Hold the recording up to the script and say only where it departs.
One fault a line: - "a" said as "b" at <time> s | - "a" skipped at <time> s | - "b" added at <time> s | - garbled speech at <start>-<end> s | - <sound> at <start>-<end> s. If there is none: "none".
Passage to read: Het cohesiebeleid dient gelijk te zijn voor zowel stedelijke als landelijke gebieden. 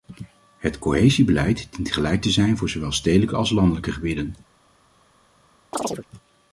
- chirp at 5.7-6.1 s